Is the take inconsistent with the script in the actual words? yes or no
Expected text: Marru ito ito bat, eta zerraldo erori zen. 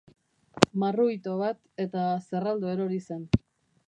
yes